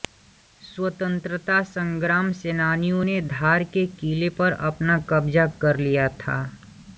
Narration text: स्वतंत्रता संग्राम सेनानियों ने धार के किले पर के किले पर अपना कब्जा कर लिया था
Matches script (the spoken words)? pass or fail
fail